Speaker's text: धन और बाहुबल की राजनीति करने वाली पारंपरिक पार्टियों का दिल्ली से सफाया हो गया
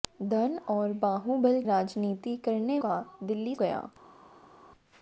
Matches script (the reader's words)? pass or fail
fail